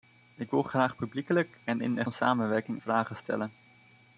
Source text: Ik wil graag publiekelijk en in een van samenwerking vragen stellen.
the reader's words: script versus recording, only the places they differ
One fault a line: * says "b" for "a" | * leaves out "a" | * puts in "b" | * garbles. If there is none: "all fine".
all fine